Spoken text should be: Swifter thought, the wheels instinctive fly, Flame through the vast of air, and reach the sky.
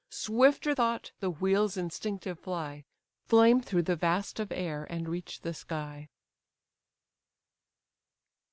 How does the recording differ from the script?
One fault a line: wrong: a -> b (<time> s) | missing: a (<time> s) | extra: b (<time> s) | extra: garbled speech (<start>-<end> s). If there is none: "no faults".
no faults